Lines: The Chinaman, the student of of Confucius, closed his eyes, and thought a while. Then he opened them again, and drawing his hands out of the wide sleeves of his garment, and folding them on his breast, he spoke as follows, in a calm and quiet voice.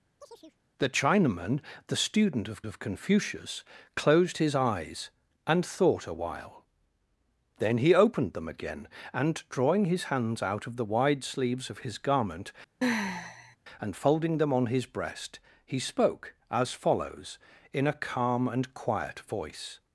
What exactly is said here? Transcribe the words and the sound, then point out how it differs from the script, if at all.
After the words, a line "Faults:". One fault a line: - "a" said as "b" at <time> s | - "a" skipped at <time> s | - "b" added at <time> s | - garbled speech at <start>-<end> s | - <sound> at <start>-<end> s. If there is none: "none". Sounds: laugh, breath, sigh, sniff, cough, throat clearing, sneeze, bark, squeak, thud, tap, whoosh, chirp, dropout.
The Chinaman, the student of of Confucius, closed his eyes, and thought a while. Then he opened them again, and drawing his hands out of the wide sleeves of his garment, and folding them on his breast, he spoke as follows, in a calm and quiet voice.
Faults:
- chirp at 0.2-0.6 s
- sigh at 12.8-13.6 s